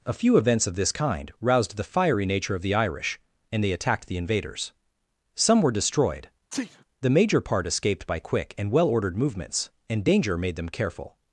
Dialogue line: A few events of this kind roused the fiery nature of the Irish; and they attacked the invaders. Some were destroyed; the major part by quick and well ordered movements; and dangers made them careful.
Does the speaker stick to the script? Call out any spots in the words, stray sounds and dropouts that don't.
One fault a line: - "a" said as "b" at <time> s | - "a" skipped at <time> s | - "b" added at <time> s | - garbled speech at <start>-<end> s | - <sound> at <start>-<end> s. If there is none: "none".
- sneeze at 6.5-6.8 s
- "escaped" added at 7.7 s
- "dangers" said as "danger" at 10.0 s